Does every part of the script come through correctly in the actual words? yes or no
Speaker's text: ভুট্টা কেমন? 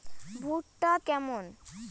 yes